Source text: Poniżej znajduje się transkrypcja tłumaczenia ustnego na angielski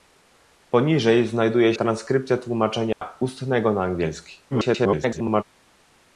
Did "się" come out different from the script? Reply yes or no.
yes